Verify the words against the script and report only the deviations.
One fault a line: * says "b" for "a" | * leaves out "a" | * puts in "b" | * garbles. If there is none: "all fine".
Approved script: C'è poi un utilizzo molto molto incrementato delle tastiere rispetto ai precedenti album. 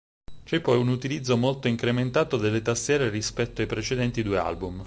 * leaves out "molto"
* puts in "due"